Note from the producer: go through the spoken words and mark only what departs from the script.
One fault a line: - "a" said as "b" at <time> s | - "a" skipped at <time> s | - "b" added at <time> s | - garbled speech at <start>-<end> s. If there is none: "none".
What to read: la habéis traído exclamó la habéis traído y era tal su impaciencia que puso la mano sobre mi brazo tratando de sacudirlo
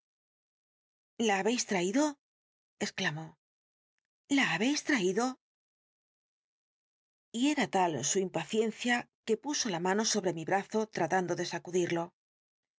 none